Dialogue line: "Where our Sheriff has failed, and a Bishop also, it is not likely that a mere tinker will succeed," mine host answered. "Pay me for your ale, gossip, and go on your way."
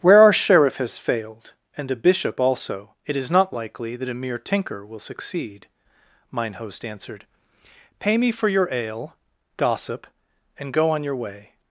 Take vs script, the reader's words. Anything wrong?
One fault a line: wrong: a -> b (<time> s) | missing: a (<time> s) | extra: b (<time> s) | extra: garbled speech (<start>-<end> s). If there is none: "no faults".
no faults